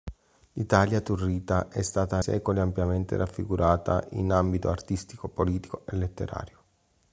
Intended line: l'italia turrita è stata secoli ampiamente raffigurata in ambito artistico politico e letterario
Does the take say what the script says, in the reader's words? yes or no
yes